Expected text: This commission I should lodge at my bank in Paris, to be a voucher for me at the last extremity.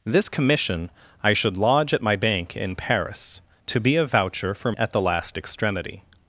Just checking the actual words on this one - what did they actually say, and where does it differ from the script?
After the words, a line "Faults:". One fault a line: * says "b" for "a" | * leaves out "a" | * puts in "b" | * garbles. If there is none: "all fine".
This commission I should lodge at my bank in Paris, to be a voucher for at the last extremity.
Faults:
* leaves out "me"